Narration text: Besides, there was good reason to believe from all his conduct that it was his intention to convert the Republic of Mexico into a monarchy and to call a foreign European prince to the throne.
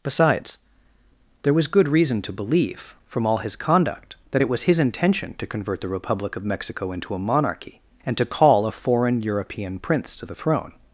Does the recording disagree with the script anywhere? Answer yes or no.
no